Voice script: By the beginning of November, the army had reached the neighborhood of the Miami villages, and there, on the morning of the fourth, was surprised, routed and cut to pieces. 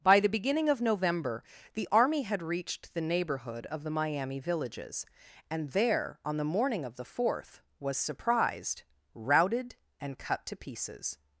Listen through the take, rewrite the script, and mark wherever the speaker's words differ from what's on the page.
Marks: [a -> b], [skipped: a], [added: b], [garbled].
By the beginning of November, the army had reached the neighborhood of the Miami villages, and there, on the morning of the fourth, was surprised, routed and cut to pieces.